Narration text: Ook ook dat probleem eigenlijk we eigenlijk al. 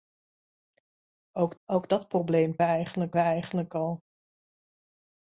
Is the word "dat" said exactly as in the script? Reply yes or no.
yes